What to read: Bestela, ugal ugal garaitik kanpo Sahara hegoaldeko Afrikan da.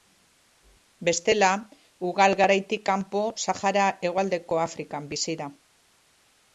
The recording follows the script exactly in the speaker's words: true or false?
false